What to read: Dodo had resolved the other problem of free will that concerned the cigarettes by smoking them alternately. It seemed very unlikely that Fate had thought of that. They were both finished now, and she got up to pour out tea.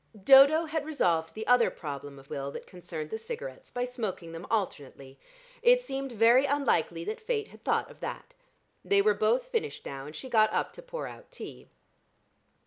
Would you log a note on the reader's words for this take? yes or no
yes